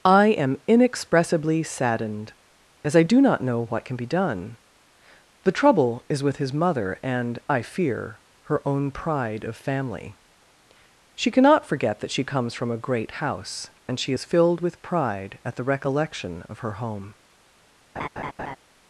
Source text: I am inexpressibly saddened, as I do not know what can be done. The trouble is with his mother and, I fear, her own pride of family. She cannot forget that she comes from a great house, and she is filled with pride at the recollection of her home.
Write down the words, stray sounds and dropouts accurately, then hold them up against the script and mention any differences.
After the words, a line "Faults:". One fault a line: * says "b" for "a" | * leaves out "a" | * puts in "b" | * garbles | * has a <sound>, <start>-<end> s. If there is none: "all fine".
I am inexpressibly saddened, as I do not know what can be done. The trouble is with his mother and, I fear, her own pride of family. She cannot forget that she comes from a great house, and she is filled with pride at the recollection of her home.
Faults:
* has a laugh, 18.0-18.6 s